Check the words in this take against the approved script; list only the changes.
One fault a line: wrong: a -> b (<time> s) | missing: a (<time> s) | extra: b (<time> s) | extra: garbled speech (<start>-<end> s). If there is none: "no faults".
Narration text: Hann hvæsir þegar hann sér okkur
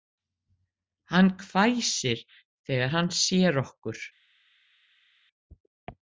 no faults